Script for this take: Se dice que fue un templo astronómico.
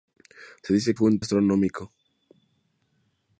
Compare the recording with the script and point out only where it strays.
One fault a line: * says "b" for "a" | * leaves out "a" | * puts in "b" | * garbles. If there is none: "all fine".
* leaves out "que"
* leaves out "templo"